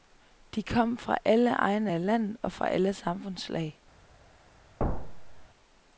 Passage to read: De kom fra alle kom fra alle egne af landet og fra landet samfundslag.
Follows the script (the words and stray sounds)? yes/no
no